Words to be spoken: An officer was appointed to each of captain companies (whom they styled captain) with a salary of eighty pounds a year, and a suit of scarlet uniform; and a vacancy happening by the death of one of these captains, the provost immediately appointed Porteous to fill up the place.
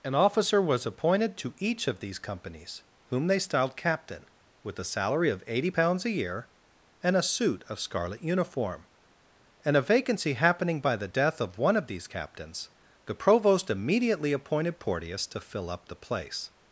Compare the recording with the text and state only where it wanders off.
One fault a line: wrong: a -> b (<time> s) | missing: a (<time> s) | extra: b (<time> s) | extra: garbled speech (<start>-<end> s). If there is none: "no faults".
wrong: captain -> these (2.0 s)